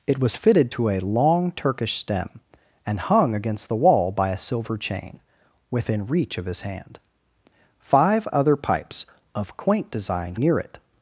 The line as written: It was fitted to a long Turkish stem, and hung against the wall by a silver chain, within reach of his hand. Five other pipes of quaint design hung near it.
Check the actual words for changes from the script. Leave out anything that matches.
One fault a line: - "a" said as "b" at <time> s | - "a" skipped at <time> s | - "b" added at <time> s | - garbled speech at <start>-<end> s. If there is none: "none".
- "hung" skipped at 10.3 s